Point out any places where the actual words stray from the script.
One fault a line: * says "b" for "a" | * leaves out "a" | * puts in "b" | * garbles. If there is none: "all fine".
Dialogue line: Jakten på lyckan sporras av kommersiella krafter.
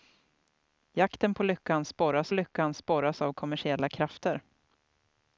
* puts in "lyckan sporras"